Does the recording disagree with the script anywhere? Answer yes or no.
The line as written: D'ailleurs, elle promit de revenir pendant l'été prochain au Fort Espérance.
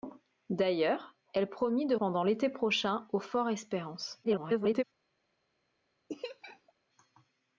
yes